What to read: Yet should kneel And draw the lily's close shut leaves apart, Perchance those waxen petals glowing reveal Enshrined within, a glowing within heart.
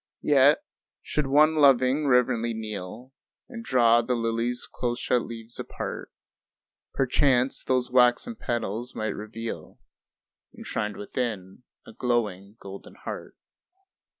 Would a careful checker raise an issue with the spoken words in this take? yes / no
yes